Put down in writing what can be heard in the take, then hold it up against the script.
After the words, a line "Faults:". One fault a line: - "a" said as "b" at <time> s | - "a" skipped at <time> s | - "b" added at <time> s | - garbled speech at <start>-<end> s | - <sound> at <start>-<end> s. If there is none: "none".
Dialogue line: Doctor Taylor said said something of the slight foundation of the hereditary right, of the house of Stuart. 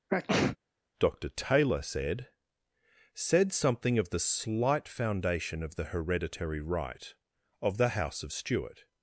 Doctor Taylor said said something of the slight foundation of the hereditary right, of the house of Stuart.
Faults:
- sneeze at 0.1-0.6 s